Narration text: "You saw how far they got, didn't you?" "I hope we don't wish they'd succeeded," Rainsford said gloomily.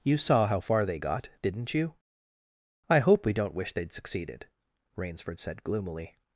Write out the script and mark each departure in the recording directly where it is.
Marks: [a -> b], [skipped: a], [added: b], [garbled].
"You saw how far they got, didn't you?" "I hope we don't wish they'd succeeded," Rainsford said gloomily.